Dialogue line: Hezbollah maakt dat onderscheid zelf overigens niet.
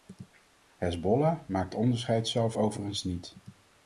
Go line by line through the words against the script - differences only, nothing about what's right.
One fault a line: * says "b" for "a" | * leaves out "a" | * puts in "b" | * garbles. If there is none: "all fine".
* leaves out "dat"